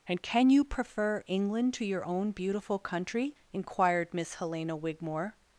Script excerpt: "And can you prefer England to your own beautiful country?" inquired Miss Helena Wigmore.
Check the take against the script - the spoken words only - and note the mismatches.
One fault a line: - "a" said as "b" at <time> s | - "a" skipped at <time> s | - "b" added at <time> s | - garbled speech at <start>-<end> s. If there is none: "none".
none